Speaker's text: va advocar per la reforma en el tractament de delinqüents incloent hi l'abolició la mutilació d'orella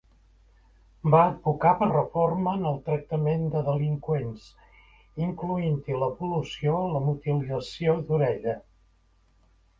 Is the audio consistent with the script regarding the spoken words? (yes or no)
no